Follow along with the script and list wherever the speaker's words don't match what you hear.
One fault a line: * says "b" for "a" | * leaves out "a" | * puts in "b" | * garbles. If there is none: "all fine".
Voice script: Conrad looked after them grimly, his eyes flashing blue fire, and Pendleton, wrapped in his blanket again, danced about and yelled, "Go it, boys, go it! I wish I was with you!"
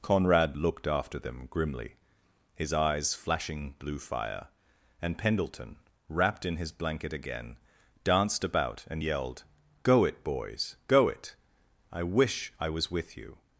all fine